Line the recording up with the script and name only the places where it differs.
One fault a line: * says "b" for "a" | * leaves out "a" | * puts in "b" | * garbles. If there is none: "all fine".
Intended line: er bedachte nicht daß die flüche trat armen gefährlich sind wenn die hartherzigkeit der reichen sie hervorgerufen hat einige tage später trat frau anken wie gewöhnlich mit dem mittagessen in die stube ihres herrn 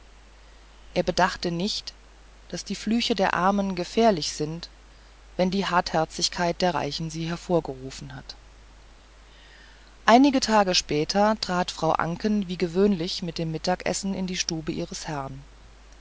* says "der" for "trat"